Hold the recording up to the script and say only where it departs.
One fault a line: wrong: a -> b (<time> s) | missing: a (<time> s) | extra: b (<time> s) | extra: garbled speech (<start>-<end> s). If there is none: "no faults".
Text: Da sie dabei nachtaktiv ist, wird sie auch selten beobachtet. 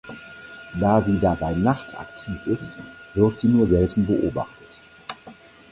wrong: auch -> nur (3.5 s)